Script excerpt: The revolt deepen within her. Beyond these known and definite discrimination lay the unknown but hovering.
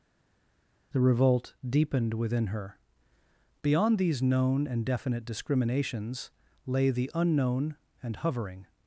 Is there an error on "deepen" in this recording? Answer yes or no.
yes